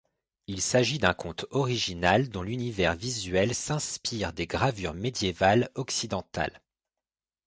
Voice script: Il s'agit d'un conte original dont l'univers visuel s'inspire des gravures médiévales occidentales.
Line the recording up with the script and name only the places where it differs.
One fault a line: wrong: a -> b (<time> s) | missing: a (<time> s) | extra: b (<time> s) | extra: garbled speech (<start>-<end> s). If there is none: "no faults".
no faults